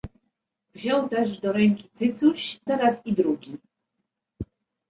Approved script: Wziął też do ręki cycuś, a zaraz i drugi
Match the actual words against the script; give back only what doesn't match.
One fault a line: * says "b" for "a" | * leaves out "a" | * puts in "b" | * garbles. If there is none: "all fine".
* leaves out "a"